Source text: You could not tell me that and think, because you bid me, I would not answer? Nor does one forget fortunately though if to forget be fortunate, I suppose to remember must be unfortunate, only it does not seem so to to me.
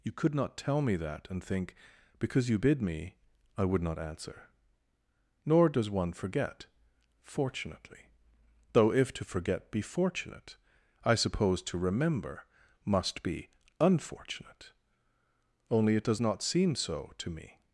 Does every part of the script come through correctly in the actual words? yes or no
no